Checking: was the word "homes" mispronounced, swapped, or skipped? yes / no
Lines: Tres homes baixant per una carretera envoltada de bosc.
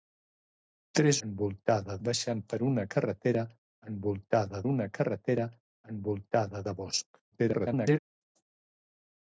yes